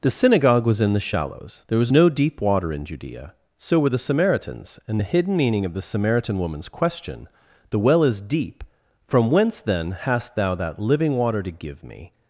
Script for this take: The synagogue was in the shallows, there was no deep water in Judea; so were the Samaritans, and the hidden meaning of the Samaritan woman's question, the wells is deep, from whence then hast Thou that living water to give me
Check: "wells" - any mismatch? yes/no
yes